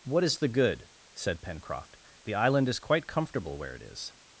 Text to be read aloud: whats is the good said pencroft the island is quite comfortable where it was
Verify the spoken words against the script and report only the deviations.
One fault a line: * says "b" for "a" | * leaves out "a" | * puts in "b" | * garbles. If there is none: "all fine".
* says "what" for "whats"
* says "is" for "was"